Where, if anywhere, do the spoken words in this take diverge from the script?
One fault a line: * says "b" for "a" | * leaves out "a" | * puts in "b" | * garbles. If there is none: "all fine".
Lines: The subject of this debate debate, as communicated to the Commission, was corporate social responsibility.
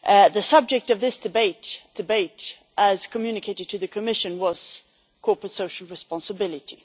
all fine